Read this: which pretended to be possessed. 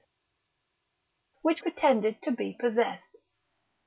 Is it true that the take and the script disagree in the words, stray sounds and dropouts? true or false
false